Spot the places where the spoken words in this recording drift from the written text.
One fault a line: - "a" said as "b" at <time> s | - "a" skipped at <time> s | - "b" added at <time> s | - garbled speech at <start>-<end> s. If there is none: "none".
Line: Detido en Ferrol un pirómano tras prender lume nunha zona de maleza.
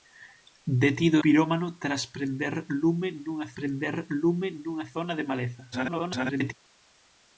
- "en Ferrol un pirómano tras" said as "pirómano tras prender lume nunha" at 1.2 s
- garbled speech at 5.7-6.5 s